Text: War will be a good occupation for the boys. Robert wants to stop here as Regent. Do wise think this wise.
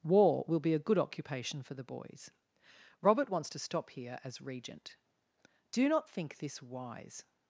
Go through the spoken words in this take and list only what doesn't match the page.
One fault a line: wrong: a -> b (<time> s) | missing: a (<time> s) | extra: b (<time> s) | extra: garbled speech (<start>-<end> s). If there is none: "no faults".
wrong: wise -> not (5.9 s)